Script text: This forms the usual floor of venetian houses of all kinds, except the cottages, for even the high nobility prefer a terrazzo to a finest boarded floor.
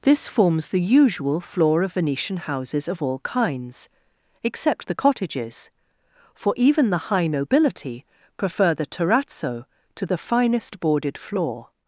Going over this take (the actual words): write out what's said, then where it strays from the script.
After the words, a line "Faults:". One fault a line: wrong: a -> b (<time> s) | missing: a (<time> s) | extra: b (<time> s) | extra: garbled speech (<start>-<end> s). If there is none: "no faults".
This forms the usual floor of venetian houses of all kinds, except the cottages, for even the high nobility prefer the terrazzo to the finest boarded floor.
Faults:
wrong: a -> the (8.7 s)
wrong: a -> the (10.0 s)